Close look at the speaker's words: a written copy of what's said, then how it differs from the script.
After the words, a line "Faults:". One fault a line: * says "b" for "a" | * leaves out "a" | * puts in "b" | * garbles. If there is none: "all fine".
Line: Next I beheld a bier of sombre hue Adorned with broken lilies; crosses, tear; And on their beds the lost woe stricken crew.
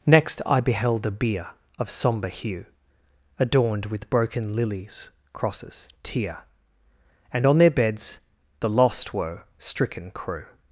Next I beheld a bier of sombre hue Adorned with broken lilies; crosses, tear; And on their beds the lost woe stricken crew.
Faults:
all fine